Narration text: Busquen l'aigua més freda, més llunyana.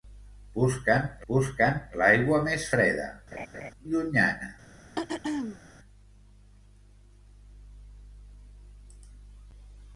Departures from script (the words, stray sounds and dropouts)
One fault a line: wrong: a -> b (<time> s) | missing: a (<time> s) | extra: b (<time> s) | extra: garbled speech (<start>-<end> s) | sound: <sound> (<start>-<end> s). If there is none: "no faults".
extra: busquen (1.3 s)
missing: més (3.1 s)
sound: laugh (3.3-3.7 s)
sound: throat clearing (5.0-5.6 s)